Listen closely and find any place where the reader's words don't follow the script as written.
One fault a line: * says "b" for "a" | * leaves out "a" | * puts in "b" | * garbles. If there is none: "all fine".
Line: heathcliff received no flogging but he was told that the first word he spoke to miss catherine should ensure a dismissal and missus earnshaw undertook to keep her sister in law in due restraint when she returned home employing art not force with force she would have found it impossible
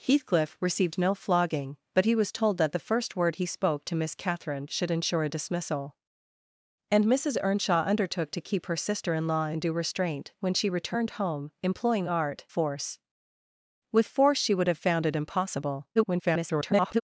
* leaves out "not"
* garbles